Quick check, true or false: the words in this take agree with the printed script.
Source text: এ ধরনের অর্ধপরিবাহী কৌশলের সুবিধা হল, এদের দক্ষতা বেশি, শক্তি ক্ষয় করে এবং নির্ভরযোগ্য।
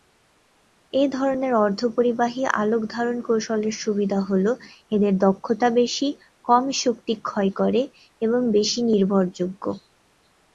false